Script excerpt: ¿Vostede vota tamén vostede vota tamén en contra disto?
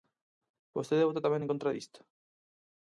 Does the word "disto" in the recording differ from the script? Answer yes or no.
no